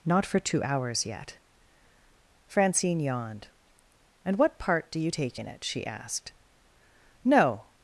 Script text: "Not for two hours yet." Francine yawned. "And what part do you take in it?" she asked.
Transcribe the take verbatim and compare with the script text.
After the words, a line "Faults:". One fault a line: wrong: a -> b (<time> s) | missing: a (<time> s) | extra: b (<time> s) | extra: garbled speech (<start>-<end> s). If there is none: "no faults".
"Not for two hours yet." Francine yawned. "And what part do you take in it?" she asked. "No
Faults:
extra: No (7.2 s)